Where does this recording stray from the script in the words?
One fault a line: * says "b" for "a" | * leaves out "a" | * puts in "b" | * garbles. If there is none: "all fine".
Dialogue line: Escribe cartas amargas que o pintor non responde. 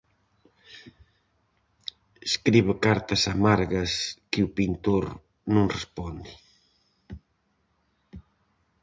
all fine